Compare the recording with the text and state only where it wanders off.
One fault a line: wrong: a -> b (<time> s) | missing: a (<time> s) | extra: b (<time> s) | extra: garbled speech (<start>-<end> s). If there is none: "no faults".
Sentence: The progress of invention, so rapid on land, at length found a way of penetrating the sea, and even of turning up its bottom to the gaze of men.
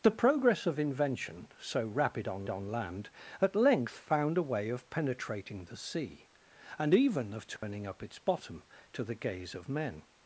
extra: on (2.5 s)